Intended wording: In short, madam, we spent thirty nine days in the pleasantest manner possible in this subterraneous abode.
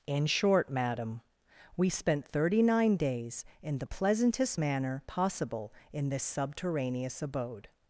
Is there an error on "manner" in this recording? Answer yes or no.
no